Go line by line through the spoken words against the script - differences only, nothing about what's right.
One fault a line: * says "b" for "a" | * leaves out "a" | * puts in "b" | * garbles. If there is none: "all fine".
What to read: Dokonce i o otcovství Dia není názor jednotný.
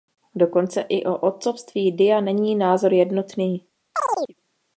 all fine